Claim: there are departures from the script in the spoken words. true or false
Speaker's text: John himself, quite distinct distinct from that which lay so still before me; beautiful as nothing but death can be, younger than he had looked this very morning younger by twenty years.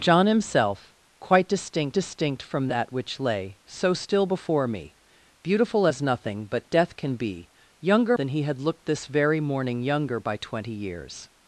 false